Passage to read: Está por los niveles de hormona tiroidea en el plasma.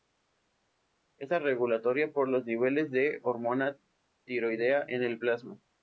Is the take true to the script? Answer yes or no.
no